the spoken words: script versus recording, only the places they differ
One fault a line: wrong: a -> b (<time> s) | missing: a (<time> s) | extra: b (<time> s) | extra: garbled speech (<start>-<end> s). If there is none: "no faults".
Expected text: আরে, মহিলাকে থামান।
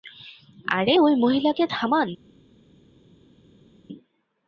extra: ওই (1.0 s)